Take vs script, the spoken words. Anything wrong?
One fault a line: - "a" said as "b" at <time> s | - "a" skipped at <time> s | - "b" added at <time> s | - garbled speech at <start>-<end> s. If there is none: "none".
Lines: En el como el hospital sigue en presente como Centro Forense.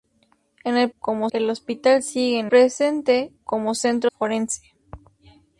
none